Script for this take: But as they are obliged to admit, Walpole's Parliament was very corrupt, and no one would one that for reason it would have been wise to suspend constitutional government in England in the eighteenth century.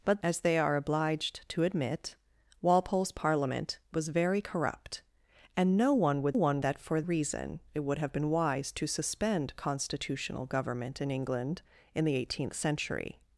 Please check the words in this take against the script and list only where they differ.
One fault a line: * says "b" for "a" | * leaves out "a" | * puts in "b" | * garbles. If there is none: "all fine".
all fine